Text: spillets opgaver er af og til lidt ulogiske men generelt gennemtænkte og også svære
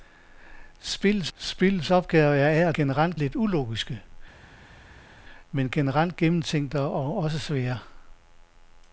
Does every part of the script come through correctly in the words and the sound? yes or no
no